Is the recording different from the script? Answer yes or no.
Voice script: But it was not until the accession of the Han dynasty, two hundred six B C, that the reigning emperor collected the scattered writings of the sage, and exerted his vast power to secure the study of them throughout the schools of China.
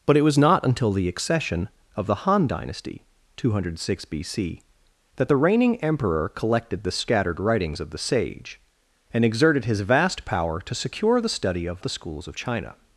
yes